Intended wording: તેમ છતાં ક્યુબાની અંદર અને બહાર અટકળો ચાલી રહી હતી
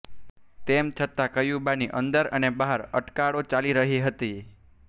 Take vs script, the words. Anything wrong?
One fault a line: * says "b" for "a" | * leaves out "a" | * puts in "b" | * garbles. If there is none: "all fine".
all fine